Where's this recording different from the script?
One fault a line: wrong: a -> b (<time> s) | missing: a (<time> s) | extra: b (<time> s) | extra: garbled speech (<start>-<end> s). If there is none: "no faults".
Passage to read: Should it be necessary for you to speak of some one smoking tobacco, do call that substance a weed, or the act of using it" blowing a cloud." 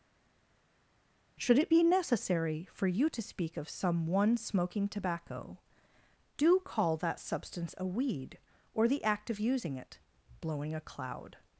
no faults